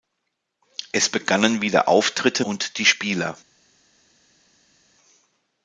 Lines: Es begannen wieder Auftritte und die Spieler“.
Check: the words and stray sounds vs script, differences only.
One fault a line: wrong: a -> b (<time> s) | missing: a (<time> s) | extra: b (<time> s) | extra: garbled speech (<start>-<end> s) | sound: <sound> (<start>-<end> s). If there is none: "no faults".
no faults